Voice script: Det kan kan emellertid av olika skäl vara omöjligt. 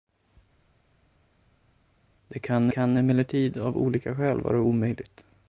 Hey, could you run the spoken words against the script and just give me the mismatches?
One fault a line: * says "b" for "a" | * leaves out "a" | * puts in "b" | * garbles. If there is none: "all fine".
all fine